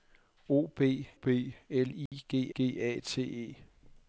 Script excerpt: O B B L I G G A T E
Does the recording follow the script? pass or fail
pass